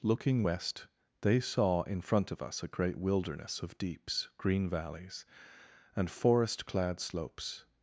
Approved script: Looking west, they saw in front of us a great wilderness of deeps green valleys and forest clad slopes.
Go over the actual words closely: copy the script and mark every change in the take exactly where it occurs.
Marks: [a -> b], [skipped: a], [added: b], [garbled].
Looking west, they saw in front of us a great wilderness of deeps green valleys and forest clad slopes.